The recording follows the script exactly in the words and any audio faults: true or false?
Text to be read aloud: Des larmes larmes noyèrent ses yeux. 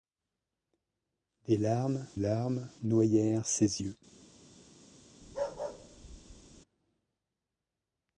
false